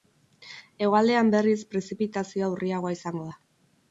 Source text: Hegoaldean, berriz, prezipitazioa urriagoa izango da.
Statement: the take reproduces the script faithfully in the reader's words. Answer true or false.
true